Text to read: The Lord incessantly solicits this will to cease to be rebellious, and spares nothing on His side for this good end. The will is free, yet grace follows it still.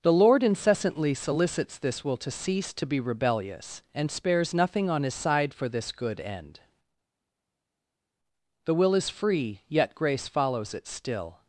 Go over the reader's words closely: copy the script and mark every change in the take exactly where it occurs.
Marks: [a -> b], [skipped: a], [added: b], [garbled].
The Lord incessantly solicits this will to cease to be rebellious, and spares nothing on His side for this good end. The will is free, yet grace follows it still.